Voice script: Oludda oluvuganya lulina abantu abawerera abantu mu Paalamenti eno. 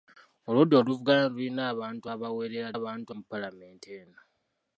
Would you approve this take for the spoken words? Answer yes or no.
yes